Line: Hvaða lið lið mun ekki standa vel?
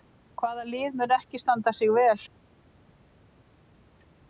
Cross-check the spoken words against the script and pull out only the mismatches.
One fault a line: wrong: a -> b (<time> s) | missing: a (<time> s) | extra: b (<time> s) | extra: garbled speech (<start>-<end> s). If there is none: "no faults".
missing: lið (1.0 s)
extra: sig (1.8 s)